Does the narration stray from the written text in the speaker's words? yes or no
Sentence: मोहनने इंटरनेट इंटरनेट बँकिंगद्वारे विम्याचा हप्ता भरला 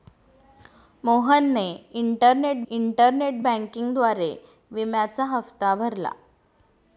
no